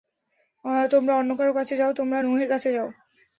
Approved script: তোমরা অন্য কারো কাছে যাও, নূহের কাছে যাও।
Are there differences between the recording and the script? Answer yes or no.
yes